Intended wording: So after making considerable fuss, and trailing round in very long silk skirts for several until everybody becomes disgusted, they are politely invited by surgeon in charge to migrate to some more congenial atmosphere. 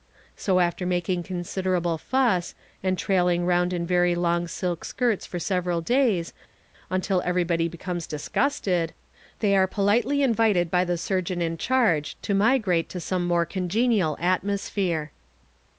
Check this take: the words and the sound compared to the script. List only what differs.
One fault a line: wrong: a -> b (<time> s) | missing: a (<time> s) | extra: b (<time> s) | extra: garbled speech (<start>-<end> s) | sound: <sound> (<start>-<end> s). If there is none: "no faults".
extra: days (5.8 s)
extra: the (10.8 s)